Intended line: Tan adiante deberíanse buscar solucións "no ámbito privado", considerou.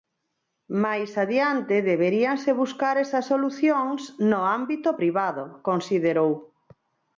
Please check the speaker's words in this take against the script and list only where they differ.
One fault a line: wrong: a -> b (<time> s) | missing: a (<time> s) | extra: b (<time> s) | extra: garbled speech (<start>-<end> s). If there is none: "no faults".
wrong: Tan -> Máis (0.8 s)
extra: esas (3.0 s)